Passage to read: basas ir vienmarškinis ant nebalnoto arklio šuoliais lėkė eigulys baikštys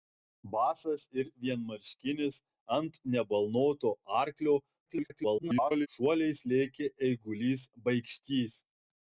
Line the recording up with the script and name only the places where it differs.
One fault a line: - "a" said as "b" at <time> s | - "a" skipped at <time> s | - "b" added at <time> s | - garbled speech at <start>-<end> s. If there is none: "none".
- garbled speech at 4.9-5.9 s